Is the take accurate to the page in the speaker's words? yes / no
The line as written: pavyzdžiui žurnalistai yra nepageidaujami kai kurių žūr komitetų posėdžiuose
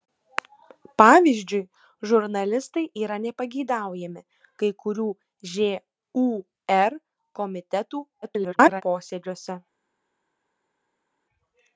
no